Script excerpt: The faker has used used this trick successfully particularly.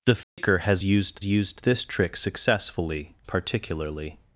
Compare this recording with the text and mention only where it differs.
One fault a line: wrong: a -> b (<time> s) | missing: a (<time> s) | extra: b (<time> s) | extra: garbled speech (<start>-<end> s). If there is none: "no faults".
no faults